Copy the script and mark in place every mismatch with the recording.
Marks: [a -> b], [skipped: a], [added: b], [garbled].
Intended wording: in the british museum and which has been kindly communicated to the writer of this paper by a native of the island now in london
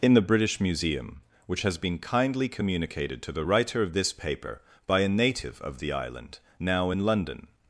in the british museum [skipped: and] which has been kindly communicated to the writer of this paper by a native of the island now in london